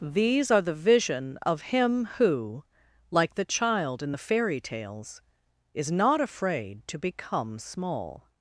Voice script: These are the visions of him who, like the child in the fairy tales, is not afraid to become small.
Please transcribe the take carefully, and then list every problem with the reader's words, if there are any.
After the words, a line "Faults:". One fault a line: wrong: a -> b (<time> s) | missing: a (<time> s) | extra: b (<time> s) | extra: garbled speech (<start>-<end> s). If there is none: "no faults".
These are the vision of him who, like the child in the fairy tales, is not afraid to become small.
Faults:
wrong: visions -> vision (0.7 s)